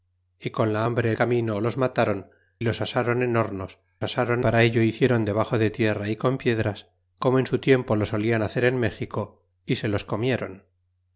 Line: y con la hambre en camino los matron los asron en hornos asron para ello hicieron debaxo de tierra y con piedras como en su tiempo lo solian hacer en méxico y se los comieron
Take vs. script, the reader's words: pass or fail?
pass